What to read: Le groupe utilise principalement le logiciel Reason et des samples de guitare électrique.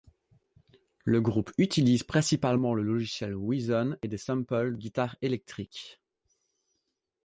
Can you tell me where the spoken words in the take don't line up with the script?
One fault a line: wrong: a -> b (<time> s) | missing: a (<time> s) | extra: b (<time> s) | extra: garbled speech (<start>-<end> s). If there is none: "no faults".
missing: de (4.8 s)